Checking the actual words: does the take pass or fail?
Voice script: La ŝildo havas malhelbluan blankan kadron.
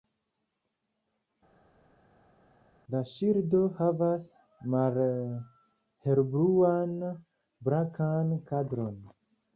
pass